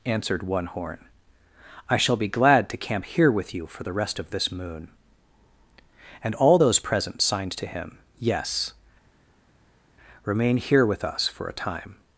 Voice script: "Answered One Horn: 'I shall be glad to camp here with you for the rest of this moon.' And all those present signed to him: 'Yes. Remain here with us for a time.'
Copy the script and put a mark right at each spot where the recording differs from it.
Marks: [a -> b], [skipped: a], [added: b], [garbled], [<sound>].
"Answered One Horn: 'I shall be glad to camp here with you for the rest of this moon.' And all those present signed to him: 'Yes. Remain here with us for a time.'